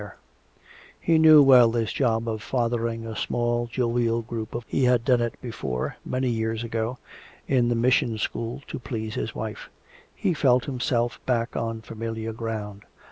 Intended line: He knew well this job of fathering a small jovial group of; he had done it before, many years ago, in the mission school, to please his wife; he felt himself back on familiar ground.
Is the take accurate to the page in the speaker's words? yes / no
yes